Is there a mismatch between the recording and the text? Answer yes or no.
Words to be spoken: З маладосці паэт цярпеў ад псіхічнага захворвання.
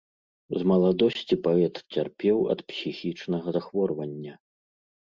no